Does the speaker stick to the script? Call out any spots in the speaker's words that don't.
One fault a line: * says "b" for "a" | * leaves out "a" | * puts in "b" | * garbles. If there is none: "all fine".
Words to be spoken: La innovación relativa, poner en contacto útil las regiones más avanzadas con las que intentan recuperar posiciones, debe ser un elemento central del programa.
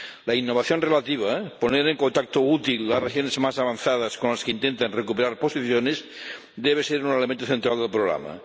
all fine